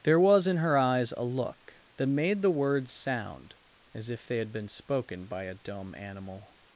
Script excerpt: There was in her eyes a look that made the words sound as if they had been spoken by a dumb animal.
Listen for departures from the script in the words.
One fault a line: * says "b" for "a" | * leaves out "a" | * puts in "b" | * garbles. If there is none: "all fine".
all fine